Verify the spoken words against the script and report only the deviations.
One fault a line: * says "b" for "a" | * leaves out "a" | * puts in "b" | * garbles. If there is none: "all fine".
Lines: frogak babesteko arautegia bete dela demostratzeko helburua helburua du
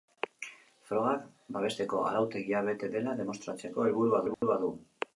all fine